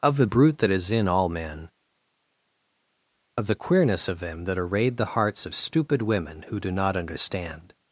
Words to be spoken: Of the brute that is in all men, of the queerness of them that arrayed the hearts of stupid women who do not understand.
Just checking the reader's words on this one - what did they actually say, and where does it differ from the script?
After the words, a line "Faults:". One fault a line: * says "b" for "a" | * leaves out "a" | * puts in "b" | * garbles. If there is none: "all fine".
Of the brute that is in all men, of the queerness of them that arrayed the hearts of stupid women who do not understand.
Faults:
all fine